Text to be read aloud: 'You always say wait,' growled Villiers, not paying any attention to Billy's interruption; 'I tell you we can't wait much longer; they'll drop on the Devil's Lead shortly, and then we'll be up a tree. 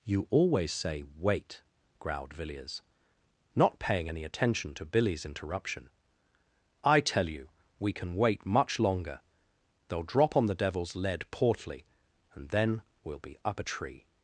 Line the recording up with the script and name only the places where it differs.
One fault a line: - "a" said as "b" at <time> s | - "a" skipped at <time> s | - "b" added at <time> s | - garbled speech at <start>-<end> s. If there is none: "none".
- "can't" said as "can" at 7.9 s
- "shortly" said as "portly" at 11.3 s